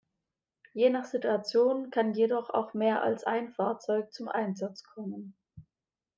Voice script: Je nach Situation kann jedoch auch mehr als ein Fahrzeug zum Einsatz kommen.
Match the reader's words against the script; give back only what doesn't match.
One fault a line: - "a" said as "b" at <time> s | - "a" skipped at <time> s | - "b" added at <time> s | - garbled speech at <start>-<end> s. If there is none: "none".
none